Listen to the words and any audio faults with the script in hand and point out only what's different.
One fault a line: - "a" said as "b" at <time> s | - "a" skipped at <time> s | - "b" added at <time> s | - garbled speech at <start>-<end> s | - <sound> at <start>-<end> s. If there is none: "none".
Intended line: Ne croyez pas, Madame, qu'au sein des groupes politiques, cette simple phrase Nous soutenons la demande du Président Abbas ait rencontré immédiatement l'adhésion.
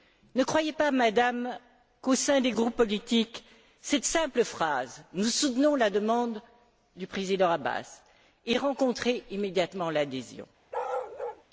- bark at 10.7-11.4 s